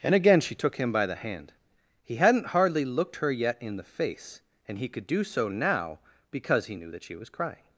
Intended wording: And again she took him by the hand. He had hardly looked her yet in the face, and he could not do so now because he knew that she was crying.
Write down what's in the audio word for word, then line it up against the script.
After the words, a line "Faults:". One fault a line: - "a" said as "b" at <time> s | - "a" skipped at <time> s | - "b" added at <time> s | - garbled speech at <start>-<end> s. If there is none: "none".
And again she took him by the hand. He hadn't hardly looked her yet in the face, and he could do so now because he knew that she was crying.
Faults:
- "had" said as "hadn't" at 2.1 s
- "not" skipped at 5.1 s